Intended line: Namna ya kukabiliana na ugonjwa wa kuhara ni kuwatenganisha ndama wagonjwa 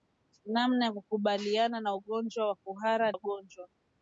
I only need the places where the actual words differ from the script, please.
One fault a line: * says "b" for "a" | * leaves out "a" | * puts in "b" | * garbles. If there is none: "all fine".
* leaves out "ni kuwatenganisha ndama"